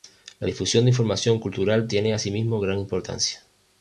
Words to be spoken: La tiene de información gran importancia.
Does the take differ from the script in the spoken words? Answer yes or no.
yes